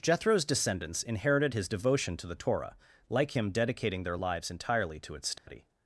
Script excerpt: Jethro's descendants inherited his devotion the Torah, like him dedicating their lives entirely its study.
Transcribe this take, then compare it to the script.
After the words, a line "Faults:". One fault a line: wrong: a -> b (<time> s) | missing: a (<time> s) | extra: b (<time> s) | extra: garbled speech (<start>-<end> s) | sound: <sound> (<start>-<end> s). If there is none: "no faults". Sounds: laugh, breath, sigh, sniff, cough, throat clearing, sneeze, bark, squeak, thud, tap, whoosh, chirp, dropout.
Jethro's descendants inherited his devotion to the Torah, like him dedicating their lives entirely to its study.
Faults:
extra: to (2.2 s)
extra: to (5.0 s)
sound: dropout (5.4-5.5 s)